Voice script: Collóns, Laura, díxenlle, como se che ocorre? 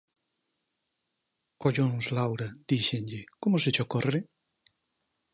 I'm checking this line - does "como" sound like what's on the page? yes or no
yes